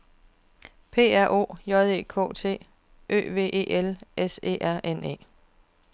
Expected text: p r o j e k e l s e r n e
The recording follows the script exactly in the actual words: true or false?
false